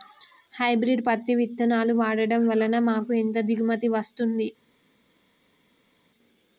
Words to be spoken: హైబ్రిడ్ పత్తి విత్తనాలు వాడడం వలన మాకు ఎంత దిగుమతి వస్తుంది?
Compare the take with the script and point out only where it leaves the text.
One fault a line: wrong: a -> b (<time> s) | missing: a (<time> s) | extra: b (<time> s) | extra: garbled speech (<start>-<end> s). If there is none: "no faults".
no faults